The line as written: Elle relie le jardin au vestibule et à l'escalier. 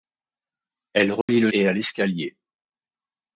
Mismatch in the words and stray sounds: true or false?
true